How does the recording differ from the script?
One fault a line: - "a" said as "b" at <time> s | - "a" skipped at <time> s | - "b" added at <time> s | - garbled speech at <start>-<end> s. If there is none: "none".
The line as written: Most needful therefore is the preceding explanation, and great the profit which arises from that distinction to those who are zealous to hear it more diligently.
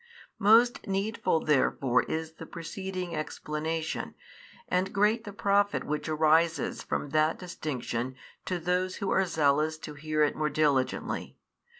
none